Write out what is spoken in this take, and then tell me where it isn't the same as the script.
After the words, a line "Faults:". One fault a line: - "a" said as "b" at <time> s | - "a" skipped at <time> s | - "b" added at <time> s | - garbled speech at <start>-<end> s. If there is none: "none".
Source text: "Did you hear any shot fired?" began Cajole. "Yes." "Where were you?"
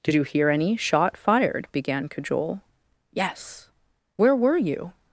"Did you hear any shot fired?" began Cajole. "Yes." "Where were you?"
Faults:
none